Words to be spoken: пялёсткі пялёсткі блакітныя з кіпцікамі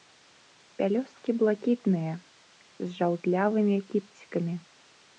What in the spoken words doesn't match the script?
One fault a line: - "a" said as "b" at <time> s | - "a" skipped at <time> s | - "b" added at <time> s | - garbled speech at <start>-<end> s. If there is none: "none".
- "пялёсткі" skipped at 1.3 s
- "жаўтлявымі" added at 3.0 s